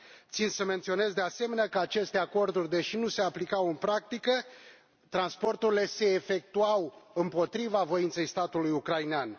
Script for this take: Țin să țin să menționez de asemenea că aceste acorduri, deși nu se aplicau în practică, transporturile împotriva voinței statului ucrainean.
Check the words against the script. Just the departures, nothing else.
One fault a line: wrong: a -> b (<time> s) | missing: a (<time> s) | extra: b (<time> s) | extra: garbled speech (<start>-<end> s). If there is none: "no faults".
missing: țin să (0.6 s)
extra: se efectuau (5.9 s)